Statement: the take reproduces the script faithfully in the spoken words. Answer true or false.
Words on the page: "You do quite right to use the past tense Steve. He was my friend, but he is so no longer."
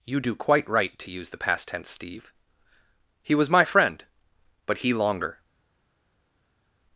false